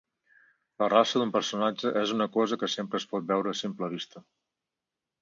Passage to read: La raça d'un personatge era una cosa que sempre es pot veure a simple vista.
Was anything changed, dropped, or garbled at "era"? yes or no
yes